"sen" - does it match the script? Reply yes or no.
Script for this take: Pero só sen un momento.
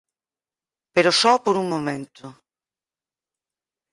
no